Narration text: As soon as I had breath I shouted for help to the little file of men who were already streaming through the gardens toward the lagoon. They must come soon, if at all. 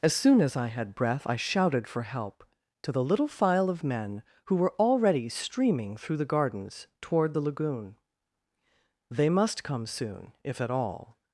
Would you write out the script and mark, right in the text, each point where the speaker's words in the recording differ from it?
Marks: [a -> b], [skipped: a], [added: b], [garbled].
As soon as I had breath I shouted for help to the little file of men who were already streaming through the gardens toward the lagoon. They must come soon, if at all.